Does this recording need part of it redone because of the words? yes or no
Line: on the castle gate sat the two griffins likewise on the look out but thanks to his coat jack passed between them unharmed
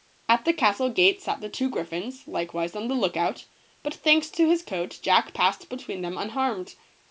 yes